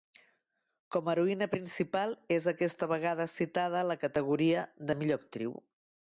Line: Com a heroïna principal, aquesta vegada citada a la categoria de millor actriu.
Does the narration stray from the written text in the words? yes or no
yes